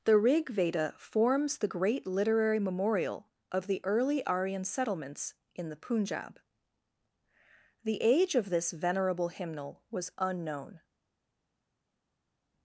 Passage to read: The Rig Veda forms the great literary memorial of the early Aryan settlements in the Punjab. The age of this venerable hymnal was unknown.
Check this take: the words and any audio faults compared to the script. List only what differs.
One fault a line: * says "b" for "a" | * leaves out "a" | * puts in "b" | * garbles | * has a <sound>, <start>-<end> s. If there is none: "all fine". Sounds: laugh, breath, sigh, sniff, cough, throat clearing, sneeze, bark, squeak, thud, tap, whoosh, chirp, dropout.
all fine